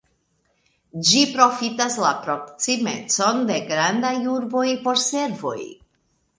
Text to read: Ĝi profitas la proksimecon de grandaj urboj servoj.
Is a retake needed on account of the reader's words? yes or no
yes